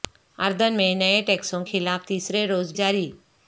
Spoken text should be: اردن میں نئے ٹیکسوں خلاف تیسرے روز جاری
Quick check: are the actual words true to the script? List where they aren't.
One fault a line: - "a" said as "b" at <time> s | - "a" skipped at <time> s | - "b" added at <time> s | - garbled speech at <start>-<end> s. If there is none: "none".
none